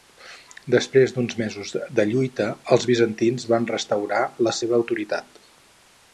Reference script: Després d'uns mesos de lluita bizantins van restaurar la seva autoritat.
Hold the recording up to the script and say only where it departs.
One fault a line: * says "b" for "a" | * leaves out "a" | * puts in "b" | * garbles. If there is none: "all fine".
* puts in "els"